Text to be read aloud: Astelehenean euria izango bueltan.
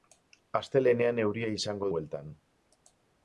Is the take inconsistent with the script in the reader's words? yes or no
no